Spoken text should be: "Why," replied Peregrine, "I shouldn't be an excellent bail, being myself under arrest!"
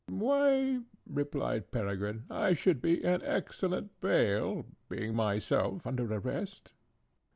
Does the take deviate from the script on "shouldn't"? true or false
true